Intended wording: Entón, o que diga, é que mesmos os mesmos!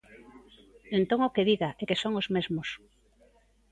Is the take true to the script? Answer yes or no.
no